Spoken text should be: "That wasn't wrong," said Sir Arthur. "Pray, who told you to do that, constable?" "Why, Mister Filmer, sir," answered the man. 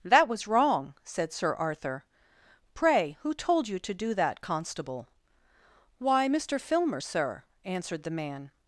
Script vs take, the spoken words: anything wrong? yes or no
yes